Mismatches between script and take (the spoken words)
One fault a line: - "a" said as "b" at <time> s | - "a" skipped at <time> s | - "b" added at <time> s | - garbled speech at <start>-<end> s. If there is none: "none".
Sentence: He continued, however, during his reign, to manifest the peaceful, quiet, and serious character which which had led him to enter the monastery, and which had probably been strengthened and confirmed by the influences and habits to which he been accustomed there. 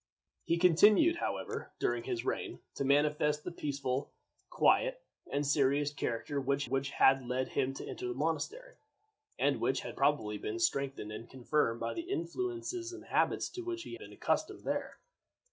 none